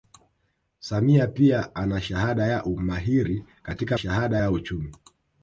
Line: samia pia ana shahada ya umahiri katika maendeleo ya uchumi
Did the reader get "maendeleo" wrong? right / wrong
wrong